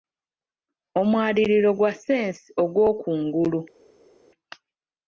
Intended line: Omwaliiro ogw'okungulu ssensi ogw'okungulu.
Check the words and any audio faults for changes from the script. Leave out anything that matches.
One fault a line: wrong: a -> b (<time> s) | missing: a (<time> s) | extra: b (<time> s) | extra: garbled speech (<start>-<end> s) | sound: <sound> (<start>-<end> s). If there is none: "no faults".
wrong: ogw'okungulu -> gwa (1.8 s)